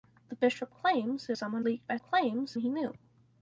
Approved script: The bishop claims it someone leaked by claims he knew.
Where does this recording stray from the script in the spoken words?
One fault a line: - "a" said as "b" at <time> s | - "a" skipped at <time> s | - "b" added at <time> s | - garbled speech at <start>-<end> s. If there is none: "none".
none